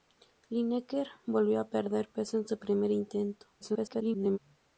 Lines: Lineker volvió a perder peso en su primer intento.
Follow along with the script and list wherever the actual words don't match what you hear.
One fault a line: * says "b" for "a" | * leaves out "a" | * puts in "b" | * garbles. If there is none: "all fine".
* garbles